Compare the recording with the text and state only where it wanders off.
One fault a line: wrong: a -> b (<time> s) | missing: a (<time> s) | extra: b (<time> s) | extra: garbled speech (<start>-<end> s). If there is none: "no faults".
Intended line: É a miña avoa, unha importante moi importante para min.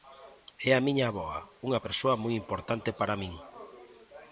wrong: importante -> persoa (1.9 s)